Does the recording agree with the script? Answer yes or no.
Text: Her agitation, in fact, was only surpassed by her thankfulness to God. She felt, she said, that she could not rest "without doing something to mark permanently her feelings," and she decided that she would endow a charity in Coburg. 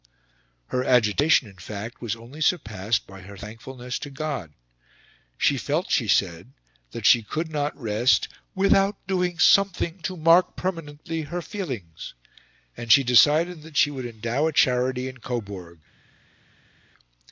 yes